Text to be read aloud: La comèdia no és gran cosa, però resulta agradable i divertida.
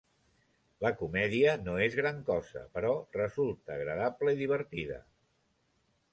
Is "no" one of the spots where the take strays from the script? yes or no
no